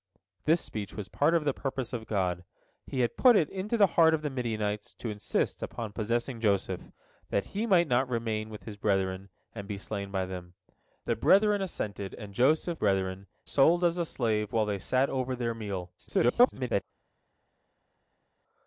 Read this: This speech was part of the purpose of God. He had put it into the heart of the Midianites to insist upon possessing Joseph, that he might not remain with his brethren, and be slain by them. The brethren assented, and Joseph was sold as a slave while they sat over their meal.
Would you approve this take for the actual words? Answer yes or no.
no